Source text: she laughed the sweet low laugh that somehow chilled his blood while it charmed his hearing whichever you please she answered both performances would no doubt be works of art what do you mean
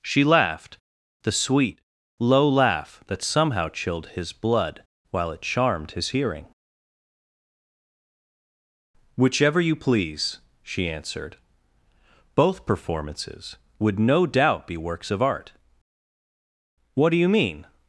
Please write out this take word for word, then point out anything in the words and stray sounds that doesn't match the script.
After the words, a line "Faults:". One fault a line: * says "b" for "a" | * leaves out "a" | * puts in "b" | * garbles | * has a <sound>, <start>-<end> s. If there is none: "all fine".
she laughed the sweet low laugh that somehow chilled his blood while it charmed his hearing whichever you please she answered both performances would no doubt be works of art what do you mean
Faults:
all fine